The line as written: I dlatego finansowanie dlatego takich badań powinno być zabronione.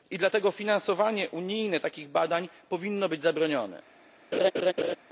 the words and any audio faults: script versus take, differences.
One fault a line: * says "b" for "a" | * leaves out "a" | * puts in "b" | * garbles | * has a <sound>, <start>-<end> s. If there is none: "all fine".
* says "unijne" for "dlatego"
* has a laugh, 4.3-5.0 s